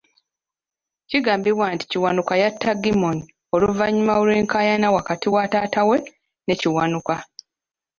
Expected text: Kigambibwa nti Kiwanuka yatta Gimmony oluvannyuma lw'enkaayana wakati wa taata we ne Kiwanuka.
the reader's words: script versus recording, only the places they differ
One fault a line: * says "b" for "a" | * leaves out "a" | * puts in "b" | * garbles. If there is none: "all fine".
all fine